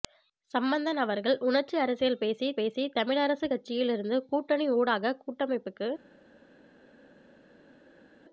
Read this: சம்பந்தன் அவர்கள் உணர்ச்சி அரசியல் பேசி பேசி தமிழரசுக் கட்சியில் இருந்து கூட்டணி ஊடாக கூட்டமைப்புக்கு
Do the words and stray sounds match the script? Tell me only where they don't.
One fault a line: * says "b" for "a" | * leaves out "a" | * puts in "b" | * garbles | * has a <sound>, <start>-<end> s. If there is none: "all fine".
all fine